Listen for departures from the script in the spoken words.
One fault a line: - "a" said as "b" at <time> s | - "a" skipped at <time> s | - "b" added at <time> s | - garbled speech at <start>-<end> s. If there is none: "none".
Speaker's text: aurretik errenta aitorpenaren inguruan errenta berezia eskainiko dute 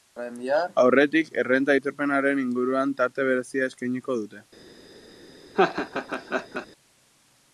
- "errenta" said as "tarte" at 3.0 s